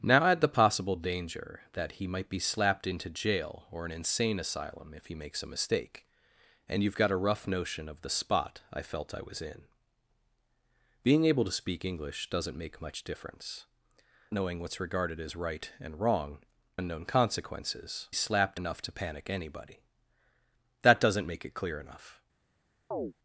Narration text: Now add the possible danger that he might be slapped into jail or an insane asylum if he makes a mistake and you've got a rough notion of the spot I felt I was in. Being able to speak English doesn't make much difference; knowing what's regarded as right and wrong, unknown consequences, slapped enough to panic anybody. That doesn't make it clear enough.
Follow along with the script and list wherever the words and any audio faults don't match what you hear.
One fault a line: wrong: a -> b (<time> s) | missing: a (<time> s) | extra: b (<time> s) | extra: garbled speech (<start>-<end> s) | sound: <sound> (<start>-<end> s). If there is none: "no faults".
sound: chirp (22.9-23.1 s)